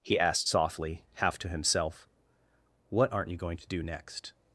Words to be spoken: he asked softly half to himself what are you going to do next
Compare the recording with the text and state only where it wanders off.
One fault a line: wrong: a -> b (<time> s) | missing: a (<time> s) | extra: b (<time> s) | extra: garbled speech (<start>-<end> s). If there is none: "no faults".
wrong: are -> aren't (3.1 s)